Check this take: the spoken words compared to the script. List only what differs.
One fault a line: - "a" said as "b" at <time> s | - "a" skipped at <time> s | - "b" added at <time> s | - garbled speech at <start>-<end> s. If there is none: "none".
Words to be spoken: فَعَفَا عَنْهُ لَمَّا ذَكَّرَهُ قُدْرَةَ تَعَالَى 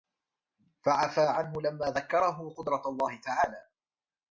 - "اللَّهِ" added at 2.9 s